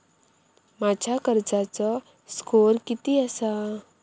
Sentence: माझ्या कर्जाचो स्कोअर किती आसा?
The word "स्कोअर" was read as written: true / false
true